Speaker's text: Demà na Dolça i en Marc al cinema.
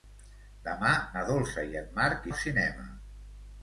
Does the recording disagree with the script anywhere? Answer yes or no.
no